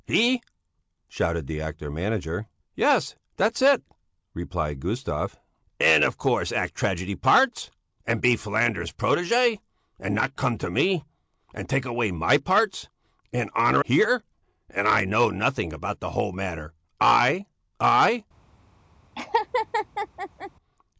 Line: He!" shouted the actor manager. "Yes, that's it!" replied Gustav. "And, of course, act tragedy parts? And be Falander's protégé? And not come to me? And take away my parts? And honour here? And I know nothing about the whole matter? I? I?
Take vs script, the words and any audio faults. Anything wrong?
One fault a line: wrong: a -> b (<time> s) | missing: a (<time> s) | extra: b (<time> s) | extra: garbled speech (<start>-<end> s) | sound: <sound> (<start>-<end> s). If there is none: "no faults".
sound: laugh (19.2-20.5 s)